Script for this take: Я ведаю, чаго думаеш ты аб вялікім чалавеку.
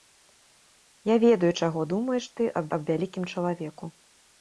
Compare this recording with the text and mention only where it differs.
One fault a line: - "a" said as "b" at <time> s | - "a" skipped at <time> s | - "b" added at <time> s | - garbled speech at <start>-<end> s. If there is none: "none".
- "аб" added at 2.8 s